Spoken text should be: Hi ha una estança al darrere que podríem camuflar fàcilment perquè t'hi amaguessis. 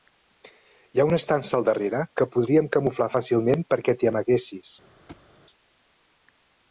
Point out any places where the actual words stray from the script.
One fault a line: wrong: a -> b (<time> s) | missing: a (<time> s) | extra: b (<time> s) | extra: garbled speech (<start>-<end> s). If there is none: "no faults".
no faults